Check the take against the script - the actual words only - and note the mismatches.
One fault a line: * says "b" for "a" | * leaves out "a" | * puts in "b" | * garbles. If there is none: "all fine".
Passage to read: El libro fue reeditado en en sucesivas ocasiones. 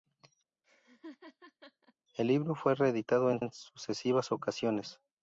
all fine